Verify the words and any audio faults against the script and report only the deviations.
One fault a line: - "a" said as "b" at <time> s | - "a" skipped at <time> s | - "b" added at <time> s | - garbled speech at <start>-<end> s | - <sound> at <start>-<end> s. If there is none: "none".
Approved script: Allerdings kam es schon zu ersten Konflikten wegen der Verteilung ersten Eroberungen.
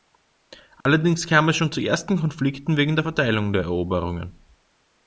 - dropout at 0.8-0.9 s
- "ersten" said as "der" at 3.5 s